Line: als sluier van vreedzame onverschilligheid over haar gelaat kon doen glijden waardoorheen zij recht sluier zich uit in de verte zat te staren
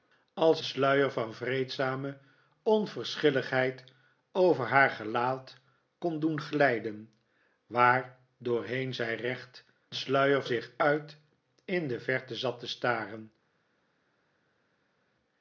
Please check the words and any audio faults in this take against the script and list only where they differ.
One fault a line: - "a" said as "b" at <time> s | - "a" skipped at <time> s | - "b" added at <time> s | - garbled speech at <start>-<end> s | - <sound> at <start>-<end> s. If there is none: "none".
none